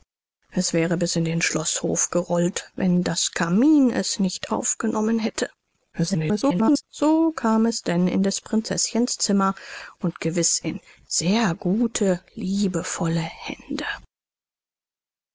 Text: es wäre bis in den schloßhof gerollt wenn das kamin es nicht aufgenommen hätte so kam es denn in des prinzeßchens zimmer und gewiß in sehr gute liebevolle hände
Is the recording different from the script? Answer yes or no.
yes